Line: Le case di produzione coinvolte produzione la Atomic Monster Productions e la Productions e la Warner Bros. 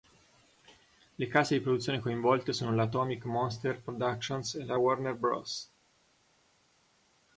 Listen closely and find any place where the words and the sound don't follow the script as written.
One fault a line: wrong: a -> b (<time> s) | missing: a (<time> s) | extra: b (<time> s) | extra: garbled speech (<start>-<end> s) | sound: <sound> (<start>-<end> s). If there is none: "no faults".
wrong: produzione -> sono (2.5 s)
missing: Productions e la (4.8 s)